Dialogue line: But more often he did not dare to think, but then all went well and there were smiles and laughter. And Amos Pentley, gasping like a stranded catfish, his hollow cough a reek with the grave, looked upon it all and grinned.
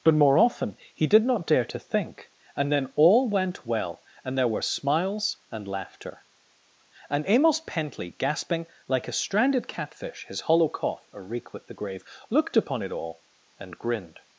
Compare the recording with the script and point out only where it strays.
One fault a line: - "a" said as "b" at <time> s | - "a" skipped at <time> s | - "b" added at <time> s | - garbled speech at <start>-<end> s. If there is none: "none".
- "but" said as "and" at 2.5 s